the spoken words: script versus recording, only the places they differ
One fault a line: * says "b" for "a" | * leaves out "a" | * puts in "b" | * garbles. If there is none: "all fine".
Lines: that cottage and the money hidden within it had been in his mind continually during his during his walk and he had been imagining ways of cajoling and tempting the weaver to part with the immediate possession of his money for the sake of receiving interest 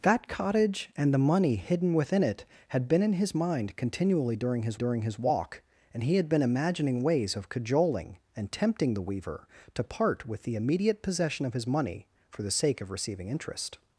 all fine